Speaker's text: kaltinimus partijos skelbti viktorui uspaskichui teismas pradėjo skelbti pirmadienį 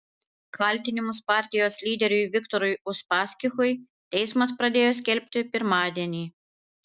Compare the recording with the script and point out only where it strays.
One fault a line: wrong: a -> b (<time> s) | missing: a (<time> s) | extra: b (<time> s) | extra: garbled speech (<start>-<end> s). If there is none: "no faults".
wrong: skelbti -> lyderiui (1.9 s)